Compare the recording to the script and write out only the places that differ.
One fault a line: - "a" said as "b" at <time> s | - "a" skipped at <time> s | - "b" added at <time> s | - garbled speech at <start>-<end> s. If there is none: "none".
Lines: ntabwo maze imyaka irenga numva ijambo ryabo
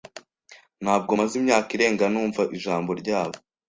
none